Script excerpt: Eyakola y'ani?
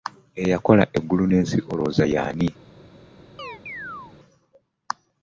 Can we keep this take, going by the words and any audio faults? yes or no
no